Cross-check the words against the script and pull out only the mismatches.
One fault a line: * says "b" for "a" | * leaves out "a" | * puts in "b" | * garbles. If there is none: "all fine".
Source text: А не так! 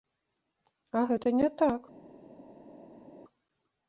* puts in "гэта"